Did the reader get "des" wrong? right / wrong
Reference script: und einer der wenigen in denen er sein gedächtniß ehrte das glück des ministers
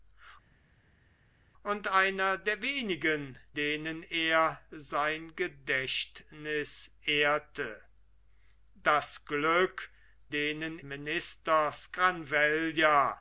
wrong